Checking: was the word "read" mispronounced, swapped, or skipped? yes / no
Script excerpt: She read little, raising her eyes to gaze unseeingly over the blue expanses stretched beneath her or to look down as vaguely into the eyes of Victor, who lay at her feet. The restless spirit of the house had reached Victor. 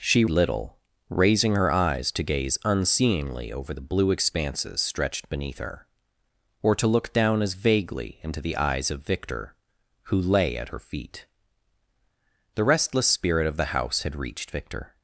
yes